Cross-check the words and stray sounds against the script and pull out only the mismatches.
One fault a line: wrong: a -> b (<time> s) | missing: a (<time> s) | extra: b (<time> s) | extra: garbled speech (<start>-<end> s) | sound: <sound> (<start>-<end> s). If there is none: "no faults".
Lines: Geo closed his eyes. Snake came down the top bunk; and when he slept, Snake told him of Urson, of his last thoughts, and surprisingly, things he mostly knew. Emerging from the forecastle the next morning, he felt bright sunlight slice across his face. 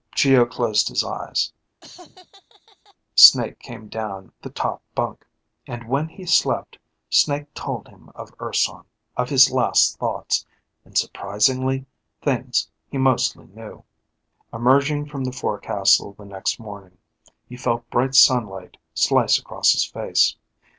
sound: laugh (1.8-3.0 s)